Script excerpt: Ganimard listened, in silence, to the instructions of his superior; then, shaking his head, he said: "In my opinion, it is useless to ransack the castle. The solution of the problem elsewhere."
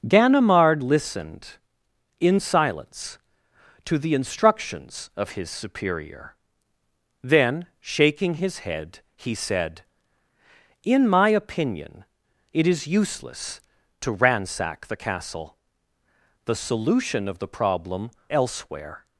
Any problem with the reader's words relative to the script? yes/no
no